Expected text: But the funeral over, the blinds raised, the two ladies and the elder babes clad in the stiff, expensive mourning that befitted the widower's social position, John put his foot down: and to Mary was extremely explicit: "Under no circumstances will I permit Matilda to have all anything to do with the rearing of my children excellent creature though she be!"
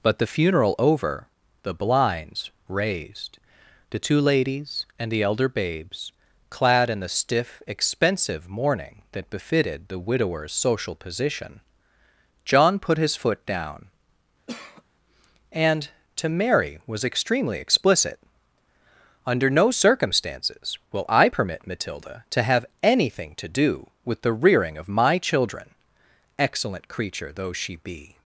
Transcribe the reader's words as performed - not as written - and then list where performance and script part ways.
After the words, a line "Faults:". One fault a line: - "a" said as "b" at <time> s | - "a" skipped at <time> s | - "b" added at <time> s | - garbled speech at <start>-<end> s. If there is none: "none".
But the funeral over, the blinds raised, the two ladies and the elder babes clad in the stiff, expensive mourning that befitted the widower's social position, John put his foot down: and to Mary was extremely explicit: "Under no circumstances will I permit Matilda to have anything to do with the rearing of my children excellent creature though she be!"
Faults:
- "all" skipped at 22.7 s